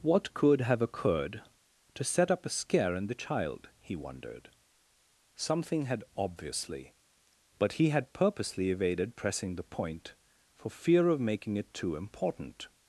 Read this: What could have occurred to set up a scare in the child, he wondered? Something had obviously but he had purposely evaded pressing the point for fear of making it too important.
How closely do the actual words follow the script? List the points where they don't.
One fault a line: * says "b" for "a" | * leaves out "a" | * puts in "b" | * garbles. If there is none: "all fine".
all fine